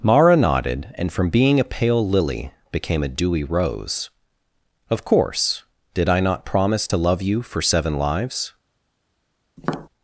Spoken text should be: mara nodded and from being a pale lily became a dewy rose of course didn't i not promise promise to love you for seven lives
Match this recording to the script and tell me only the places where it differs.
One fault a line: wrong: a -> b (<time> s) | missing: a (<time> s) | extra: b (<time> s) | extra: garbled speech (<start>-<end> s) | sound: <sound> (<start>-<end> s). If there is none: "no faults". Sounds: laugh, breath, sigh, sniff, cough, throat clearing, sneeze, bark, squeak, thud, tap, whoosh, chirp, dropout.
wrong: didn't -> did (5.9 s)
missing: promise (6.9 s)
sound: tap (9.6-9.9 s)